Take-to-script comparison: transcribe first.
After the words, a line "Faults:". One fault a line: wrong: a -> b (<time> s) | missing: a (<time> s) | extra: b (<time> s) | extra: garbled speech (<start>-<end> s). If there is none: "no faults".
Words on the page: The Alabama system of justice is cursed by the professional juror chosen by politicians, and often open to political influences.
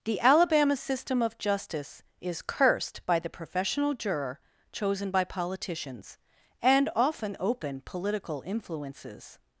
The Alabama system of justice is cursed by the professional juror chosen by politicians, and often open political influences.
Faults:
missing: to (7.8 s)